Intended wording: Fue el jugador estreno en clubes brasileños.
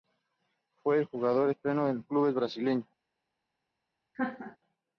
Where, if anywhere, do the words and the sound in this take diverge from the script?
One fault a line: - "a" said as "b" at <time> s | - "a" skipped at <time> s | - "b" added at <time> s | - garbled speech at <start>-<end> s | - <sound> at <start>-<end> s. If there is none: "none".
- laugh at 4.1-4.6 s